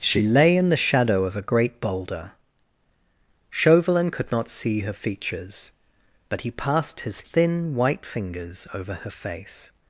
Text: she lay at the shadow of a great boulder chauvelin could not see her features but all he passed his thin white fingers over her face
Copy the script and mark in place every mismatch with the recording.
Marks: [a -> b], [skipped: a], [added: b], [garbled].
she lay [at -> in] the shadow of a great boulder chauvelin could not see her features but [skipped: all] he passed his thin white fingers over her face